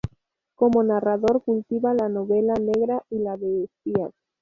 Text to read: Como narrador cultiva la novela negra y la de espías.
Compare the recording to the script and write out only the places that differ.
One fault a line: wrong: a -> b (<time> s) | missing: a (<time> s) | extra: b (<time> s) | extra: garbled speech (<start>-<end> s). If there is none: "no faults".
no faults